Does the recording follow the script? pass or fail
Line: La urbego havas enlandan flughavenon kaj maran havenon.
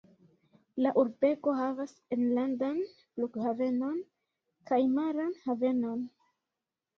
pass